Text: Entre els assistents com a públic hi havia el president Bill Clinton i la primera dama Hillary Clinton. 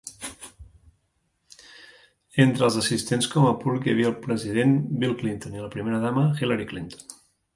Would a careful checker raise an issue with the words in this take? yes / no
no